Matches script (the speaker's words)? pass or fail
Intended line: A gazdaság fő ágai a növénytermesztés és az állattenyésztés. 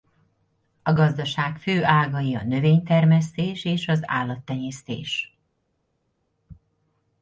pass